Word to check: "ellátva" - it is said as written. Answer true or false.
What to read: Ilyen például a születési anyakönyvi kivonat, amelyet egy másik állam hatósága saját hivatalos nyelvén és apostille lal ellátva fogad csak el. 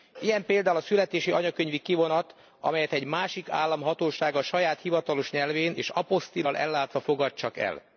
true